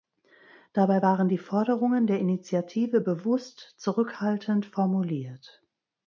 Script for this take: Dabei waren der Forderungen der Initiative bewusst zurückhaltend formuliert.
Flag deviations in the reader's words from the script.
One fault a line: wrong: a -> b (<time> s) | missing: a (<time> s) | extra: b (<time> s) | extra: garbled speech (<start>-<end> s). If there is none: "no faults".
wrong: der -> die (1.3 s)